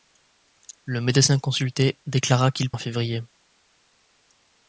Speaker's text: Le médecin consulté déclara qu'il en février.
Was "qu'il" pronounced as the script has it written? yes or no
yes